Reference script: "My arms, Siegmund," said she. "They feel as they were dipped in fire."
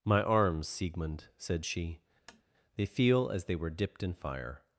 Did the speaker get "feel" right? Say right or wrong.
right